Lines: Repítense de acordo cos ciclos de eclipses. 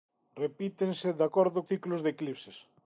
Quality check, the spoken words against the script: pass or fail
fail